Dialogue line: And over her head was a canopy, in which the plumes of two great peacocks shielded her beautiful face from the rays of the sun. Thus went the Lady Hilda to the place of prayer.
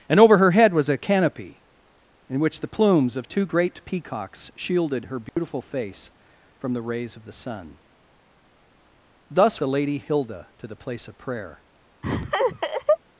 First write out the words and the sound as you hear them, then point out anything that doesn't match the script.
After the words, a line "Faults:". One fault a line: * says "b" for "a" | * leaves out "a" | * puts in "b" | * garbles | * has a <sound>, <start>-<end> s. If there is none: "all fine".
And over her head was a canopy, in which the plumes of two great peacocks shielded her beautiful face from the rays of the sun. Thus the Lady Hilda to the place of prayer.
Faults:
* has a dropout, 5.3-5.4 s
* leaves out "went"
* has a laugh, 12.0-13.0 s